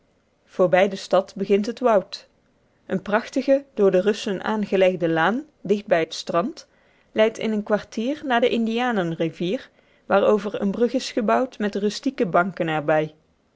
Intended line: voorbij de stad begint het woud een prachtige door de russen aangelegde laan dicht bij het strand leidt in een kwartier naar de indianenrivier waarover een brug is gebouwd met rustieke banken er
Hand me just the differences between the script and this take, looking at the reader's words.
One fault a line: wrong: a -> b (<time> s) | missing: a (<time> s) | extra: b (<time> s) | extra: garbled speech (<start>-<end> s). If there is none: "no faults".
no faults